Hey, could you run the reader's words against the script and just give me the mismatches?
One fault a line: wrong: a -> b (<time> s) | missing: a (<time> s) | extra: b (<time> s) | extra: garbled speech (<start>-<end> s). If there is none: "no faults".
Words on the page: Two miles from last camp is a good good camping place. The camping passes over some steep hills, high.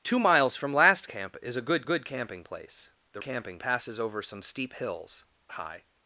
no faults